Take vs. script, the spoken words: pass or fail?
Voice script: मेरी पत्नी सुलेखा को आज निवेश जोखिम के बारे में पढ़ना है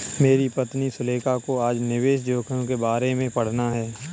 pass